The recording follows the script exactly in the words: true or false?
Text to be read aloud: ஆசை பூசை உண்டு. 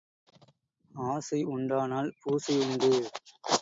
false